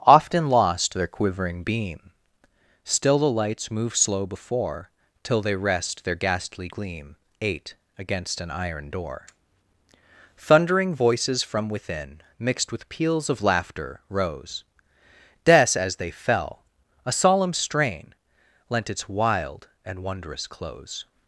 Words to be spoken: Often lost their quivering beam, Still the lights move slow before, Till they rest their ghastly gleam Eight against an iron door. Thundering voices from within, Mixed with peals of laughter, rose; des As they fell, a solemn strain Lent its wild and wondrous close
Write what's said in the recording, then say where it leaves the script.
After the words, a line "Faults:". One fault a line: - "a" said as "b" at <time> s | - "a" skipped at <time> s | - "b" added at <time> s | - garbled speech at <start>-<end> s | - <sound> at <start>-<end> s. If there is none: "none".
Often lost their quivering beam, Still the lights move slow before, Till they rest their ghastly gleam Eight against an iron door. Thundering voices from within, Mixed with peals of laughter, rose; des As they fell, a solemn strain Lent its wild and wondrous close
Faults:
none